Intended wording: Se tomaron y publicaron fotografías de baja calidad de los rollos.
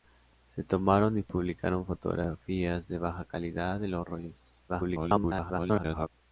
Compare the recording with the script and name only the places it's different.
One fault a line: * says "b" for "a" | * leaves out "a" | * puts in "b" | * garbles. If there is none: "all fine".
* garbles